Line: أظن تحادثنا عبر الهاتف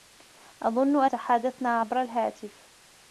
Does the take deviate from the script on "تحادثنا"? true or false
false